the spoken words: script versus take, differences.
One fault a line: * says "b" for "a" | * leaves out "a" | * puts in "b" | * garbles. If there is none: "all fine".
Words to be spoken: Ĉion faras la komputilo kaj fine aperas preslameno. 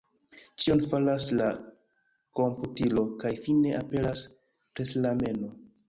all fine